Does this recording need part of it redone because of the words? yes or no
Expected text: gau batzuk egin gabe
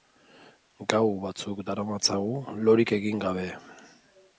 yes